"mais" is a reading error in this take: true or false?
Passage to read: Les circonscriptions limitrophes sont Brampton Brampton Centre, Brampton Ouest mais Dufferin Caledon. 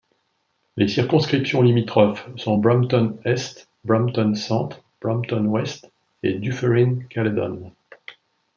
true